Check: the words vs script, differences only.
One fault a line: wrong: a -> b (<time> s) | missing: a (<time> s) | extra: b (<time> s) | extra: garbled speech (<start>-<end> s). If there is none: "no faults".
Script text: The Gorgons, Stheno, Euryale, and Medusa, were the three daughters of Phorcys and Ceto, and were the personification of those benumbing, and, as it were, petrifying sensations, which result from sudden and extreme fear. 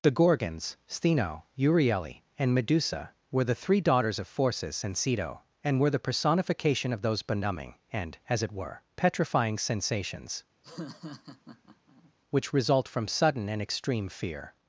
no faults